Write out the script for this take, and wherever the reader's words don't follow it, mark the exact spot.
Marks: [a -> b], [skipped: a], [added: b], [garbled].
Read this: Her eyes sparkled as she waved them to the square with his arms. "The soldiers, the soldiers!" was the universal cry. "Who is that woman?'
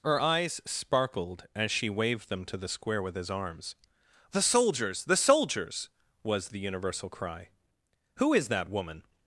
Her eyes sparkled as she waved them to the square with his arms. "The soldiers, the soldiers!" was the universal cry. "Who is that woman?'